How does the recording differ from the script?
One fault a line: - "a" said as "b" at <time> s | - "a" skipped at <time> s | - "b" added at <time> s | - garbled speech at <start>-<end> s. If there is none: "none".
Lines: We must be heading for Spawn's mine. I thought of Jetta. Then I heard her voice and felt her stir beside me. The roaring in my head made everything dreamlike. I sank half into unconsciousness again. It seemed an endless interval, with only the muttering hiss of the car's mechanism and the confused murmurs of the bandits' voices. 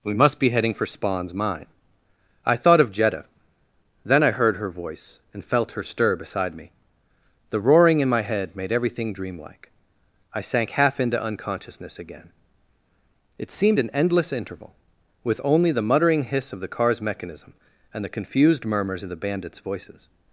none